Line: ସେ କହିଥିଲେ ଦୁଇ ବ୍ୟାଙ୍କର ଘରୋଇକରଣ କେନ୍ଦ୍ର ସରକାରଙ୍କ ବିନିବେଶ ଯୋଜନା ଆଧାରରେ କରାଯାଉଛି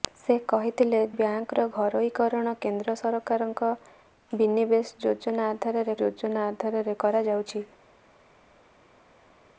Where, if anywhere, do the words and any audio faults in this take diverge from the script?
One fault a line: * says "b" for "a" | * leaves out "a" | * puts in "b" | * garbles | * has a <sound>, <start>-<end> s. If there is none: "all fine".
* leaves out "ଦୁଇ"
* puts in "ଯୋଜନା ଆଧାରରେ"